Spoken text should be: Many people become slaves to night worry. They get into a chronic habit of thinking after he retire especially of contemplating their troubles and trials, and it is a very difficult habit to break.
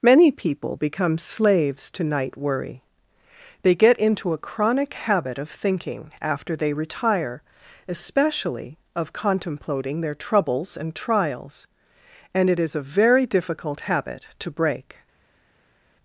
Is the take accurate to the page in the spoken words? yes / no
no